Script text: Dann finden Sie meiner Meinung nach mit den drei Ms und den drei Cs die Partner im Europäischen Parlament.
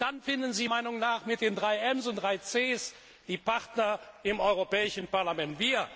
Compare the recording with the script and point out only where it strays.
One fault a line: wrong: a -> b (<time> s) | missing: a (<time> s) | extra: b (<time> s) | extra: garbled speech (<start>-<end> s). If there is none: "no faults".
missing: meiner (0.7 s)
missing: den (2.2 s)